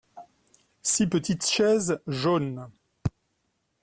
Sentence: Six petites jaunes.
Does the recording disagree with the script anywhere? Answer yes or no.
yes